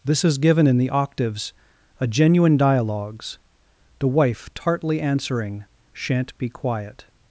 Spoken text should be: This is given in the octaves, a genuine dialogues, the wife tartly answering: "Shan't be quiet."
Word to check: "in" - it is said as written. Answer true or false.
true